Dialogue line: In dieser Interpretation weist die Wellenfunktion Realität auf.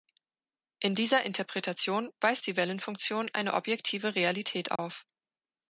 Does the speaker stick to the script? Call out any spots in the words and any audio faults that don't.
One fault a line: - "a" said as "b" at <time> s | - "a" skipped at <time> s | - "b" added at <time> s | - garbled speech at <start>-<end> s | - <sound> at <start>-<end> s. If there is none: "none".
- "eine objektive" added at 3.3 s
- dropout at 4.8-4.8 s